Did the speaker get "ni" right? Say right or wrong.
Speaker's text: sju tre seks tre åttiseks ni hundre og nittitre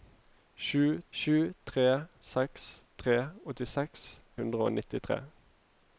wrong